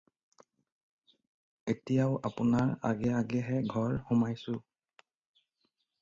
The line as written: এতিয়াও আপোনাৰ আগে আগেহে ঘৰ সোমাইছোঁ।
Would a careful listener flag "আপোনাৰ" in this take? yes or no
no